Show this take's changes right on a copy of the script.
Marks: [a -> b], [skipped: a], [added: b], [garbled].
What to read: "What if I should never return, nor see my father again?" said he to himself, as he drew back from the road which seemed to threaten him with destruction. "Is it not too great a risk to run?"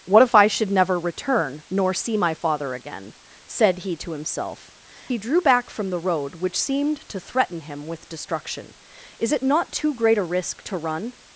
"What if I should never return, nor see my father again?" said he to himself, [skipped: as] he drew back from the road which seemed to threaten him with destruction. "Is it not too great a risk to run?"